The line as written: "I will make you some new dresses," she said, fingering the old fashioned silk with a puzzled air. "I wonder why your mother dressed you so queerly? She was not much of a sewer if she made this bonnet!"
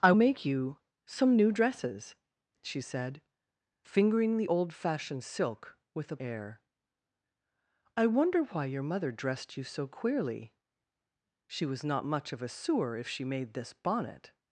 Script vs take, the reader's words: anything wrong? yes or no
yes